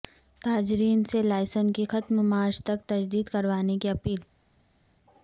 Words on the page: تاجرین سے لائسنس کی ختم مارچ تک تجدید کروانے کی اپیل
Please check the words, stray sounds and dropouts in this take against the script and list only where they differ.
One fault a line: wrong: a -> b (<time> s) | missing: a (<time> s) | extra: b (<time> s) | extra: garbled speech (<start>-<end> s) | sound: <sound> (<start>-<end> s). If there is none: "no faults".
no faults